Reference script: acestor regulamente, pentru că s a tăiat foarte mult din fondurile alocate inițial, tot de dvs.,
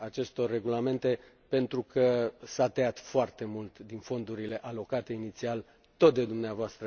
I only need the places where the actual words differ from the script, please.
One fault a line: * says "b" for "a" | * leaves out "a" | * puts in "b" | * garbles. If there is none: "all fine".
all fine